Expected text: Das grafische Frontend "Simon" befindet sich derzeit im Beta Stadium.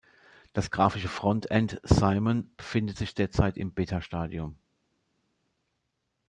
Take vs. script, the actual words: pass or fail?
pass